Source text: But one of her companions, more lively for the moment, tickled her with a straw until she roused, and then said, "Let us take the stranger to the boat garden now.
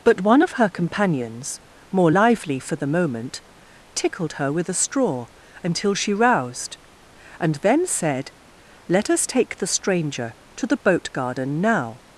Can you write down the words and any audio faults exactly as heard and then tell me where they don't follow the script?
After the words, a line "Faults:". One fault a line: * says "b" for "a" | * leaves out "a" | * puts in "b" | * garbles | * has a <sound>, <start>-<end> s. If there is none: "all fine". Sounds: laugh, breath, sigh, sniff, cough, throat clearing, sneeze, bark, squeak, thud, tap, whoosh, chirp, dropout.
But one of her companions, more lively for the moment, tickled her with a straw until she roused, and then said, "Let us take the stranger to the boat garden now.
Faults:
all fine